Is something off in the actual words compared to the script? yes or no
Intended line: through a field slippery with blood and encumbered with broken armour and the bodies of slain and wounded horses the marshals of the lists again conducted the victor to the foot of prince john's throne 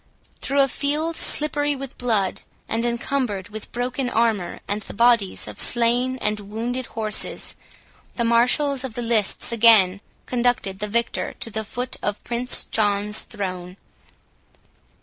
no